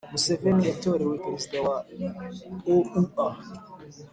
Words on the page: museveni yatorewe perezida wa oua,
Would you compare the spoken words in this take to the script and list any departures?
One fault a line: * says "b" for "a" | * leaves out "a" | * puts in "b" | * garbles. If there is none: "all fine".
all fine